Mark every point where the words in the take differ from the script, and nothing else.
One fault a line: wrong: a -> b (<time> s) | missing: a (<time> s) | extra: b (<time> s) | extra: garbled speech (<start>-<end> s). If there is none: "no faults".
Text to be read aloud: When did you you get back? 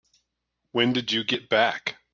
missing: you (1.2 s)